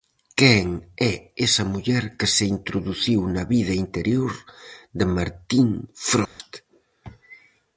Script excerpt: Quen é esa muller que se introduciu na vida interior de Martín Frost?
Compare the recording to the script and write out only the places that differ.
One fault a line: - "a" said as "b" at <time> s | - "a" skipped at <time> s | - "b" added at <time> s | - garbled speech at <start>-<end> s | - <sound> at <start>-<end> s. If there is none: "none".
- dropout at 6.2-6.4 s